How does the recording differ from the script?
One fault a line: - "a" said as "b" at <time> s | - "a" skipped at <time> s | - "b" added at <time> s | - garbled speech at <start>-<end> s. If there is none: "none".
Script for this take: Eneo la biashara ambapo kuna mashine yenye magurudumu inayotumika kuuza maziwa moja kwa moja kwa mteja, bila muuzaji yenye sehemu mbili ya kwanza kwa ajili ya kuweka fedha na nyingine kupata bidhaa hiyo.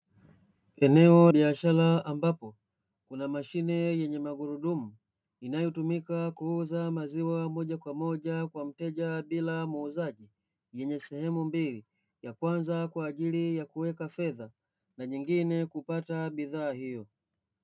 - "la" skipped at 1.3 s